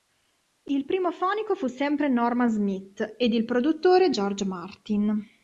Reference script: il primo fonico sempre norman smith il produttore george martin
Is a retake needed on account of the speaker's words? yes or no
yes